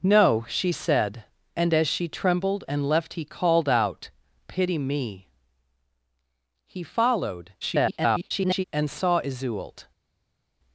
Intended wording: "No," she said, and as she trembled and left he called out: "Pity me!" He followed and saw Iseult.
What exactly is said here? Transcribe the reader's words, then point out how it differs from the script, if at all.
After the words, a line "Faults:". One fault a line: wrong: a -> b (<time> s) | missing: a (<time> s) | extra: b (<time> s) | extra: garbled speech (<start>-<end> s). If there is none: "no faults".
"No," she said, and as she trembled and left he called out: "Pity me!" He followed [garbled] and saw Iseult.
Faults:
extra: garbled speech (7.6-8.6 s)